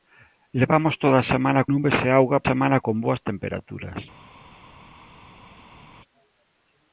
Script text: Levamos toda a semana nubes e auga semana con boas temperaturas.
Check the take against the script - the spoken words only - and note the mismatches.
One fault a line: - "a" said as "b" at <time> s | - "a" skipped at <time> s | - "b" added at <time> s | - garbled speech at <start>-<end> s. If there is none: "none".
none